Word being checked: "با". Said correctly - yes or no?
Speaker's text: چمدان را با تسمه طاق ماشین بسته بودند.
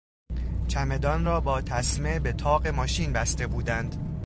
yes